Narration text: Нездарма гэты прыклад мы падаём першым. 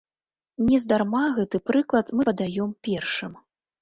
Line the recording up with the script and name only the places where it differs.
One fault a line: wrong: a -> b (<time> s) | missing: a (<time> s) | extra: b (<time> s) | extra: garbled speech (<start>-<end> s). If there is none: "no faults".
no faults